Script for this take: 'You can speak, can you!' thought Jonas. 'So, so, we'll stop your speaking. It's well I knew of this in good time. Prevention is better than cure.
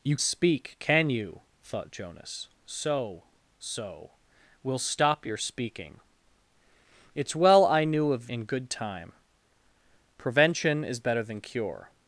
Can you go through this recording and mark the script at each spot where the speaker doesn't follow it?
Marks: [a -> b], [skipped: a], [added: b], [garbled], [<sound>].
'You [skipped: can] speak, can you!' thought Jonas. 'So, so, we'll stop your speaking. It's well I knew of [skipped: this] in good time. Prevention is better than cure.